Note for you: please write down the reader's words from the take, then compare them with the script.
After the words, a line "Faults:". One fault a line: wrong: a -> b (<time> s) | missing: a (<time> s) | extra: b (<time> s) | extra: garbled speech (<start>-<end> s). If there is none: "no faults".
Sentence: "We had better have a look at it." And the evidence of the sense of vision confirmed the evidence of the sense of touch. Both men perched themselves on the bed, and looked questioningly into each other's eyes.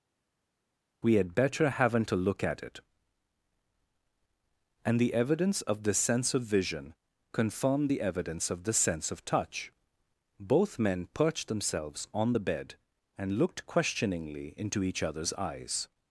"We had better haven't a look at it." And the evidence of the sense of vision confirmed the evidence of the sense of touch. Both men perched themselves on the bed, and looked questioningly into each other's eyes.
Faults:
wrong: have -> haven't (1.7 s)